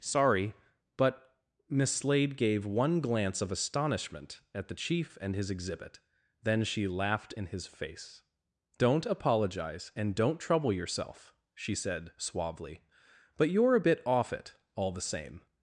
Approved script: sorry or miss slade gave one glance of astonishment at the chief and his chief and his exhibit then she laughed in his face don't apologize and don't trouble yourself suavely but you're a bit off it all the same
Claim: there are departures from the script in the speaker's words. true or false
true